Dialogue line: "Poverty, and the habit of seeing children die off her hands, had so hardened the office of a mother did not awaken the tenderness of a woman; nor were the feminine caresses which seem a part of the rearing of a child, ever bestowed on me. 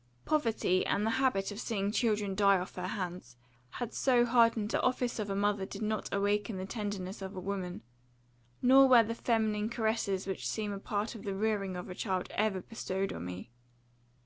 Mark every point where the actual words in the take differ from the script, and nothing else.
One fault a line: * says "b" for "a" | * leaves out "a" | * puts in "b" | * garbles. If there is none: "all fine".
all fine